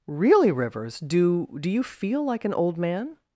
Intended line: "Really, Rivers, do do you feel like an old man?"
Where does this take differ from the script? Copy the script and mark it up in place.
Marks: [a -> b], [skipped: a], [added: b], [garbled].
"Really, Rivers, do do you feel like an old man?"